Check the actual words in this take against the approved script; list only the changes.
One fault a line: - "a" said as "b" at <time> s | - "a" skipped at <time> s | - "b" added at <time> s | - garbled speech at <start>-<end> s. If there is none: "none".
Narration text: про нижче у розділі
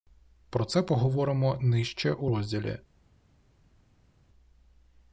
- "це поговоримо" added at 0.7 s